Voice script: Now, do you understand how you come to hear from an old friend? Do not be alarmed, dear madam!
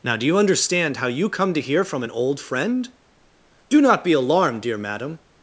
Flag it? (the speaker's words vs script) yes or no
no